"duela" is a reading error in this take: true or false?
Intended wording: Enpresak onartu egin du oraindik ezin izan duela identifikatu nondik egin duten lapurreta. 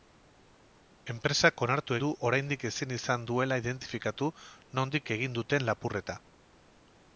false